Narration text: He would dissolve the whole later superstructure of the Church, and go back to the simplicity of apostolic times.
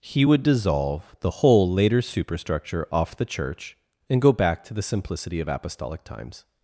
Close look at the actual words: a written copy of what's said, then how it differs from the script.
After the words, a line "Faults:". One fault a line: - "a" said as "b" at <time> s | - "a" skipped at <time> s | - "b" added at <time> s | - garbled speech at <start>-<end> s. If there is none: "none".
He would dissolve the whole later superstructure off the Church, and go back to the simplicity of apostolic times.
Faults:
- "of" said as "off" at 2.9 s